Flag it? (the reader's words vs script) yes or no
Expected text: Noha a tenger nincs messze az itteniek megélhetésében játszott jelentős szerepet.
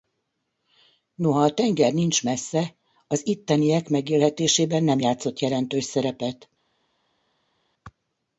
yes